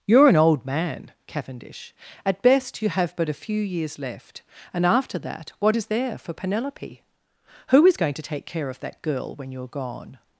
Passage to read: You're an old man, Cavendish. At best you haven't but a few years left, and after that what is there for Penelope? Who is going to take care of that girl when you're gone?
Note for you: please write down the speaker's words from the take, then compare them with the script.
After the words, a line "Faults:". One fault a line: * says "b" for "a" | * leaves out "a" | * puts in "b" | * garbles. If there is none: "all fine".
You're an old man, Cavendish. At best you have but a few years left, and after that what is there for Penelope? Who is going to take care of that girl when you're gone?
Faults:
* says "have" for "haven't"